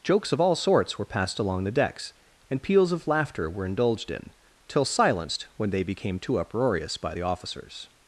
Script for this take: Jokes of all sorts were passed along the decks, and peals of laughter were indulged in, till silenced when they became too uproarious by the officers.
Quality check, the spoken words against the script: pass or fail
pass